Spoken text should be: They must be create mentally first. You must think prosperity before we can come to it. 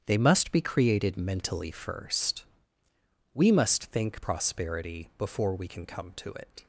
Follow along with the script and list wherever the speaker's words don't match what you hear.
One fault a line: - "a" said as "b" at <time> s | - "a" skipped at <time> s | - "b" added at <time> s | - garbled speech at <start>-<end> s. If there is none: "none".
- "create" said as "created" at 0.6 s
- "You" said as "We" at 3.3 s